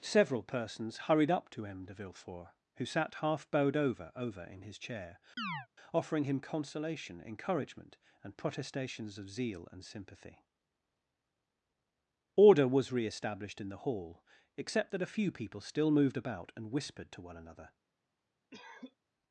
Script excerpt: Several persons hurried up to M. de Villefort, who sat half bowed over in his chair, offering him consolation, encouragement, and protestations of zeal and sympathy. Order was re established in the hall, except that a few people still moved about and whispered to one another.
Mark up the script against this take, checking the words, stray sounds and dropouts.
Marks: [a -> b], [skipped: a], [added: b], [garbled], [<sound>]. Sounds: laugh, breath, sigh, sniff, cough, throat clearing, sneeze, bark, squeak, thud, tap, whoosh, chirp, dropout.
Several persons hurried up to M. de Villefort, who sat half bowed over [added: over] in his chair, [chirp] offering him consolation, encouragement, and protestations of zeal and sympathy. Order was re established in the hall, except that a few people still moved about and whispered to one another. [cough]